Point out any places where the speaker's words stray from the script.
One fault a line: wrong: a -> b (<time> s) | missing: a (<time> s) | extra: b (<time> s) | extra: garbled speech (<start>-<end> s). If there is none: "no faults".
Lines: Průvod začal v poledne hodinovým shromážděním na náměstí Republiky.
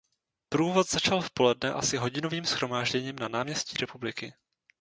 extra: asi (1.7 s)